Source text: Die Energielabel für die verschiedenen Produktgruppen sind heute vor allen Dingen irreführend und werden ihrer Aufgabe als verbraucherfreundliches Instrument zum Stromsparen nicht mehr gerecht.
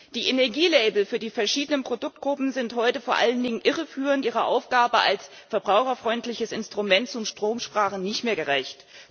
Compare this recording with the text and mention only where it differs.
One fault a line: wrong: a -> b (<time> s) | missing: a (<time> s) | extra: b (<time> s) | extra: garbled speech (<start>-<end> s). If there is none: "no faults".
missing: und werden (4.2 s)